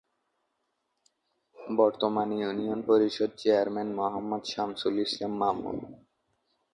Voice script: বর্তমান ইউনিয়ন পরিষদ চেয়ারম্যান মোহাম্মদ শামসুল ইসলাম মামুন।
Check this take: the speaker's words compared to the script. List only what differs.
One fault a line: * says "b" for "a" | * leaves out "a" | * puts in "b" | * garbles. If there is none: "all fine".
all fine